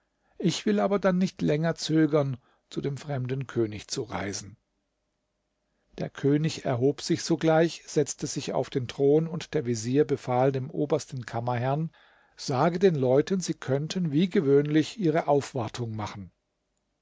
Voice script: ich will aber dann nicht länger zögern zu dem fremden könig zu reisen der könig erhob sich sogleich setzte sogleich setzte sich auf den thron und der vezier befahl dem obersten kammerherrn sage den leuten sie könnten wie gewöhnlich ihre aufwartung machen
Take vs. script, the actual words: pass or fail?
fail